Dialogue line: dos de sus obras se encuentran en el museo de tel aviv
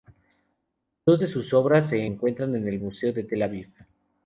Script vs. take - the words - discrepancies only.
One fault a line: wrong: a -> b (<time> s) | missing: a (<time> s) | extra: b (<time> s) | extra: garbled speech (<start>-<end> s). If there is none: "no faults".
no faults